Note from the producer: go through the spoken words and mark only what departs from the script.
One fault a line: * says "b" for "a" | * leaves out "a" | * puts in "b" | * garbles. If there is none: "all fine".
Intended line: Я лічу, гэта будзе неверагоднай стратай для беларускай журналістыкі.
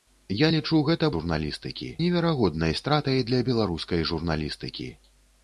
* says "журналістыкі" for "будзе"